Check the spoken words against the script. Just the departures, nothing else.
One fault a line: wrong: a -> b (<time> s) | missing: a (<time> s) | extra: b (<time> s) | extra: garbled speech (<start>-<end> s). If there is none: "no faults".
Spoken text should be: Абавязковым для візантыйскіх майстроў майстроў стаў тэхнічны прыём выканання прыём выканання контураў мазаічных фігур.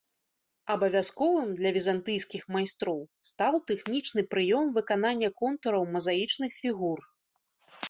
missing: майстроў (3.0 s)
missing: прыём выканання (5.3 s)